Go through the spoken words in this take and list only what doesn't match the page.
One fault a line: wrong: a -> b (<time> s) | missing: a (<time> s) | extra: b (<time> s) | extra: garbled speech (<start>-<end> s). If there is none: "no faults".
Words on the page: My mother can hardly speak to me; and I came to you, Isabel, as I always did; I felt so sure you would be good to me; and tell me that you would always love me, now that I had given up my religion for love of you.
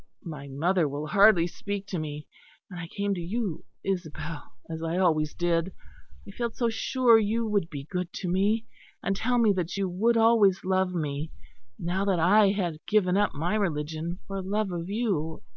wrong: can -> will (0.9 s)